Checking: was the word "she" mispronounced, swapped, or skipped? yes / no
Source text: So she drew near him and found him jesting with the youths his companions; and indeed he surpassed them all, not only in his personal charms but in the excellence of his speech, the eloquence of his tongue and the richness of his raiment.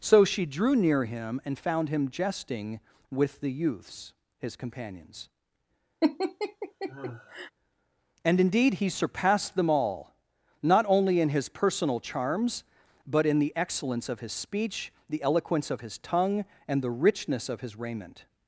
no